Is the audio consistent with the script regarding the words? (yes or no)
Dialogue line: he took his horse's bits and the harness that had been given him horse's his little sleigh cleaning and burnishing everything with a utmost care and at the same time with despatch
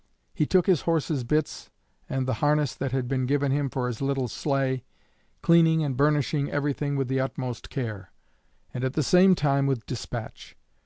no